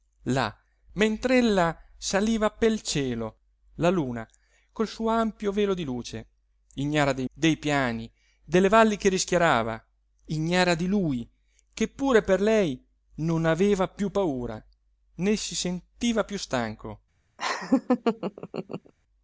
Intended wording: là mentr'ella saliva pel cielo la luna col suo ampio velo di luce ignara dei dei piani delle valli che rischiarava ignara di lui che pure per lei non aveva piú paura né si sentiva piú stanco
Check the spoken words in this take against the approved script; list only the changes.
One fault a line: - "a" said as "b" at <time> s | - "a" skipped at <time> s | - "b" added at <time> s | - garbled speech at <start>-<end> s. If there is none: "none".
none